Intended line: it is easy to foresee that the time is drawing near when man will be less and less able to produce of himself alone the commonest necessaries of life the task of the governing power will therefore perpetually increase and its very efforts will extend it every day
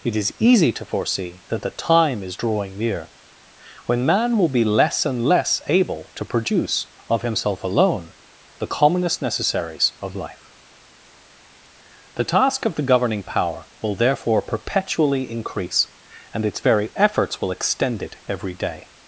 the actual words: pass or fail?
pass